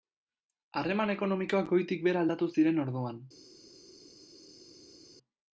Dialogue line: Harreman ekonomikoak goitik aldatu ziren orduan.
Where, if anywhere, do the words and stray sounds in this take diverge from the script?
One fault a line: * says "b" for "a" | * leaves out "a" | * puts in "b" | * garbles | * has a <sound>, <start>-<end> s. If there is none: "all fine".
* puts in "behera"